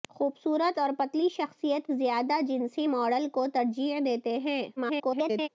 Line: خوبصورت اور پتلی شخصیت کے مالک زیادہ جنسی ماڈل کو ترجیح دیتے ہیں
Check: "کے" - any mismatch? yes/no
yes